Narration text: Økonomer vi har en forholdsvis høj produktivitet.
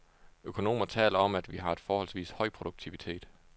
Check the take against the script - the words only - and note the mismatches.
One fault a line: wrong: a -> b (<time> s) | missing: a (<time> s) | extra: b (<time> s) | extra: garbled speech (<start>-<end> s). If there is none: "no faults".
extra: taler om at (0.8 s)